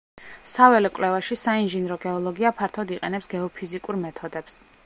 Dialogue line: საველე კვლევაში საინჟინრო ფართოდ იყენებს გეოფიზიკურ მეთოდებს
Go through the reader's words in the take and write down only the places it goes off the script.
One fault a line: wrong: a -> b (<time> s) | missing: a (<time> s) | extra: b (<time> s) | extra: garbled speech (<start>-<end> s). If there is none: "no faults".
extra: გეოლოგია (2.1 s)